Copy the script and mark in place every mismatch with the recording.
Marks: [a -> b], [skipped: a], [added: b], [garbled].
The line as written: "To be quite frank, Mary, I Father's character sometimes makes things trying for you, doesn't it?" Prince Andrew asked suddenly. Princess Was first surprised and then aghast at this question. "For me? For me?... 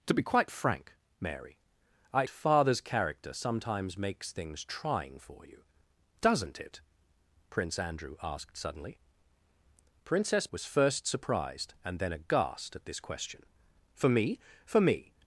"To be quite frank, Mary, I Father's character sometimes makes things trying for you, doesn't it?" Prince Andrew asked suddenly. Princess Was first surprised and then aghast at this question. "For me? For me?...